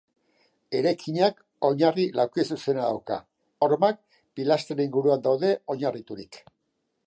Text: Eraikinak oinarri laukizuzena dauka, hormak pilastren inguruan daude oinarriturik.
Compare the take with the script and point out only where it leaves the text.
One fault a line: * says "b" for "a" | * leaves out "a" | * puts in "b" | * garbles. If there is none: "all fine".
all fine